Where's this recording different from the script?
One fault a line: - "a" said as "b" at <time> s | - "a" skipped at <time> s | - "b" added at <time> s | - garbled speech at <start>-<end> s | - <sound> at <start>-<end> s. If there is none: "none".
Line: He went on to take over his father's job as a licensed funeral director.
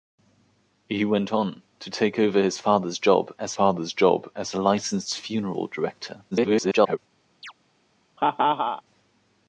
- "father's job as" added at 3.5 s
- garbled speech at 6.3-7.0 s
- chirp at 7.4-7.5 s
- laugh at 8.2-8.8 s